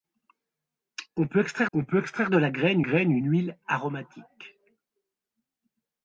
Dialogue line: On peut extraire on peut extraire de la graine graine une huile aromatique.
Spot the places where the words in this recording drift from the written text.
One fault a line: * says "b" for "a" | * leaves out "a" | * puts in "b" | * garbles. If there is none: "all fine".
all fine